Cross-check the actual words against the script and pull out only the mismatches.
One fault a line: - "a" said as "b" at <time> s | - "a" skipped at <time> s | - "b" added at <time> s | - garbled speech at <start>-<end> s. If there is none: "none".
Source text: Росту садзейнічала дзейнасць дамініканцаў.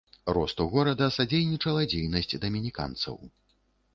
- "горада" added at 0.7 s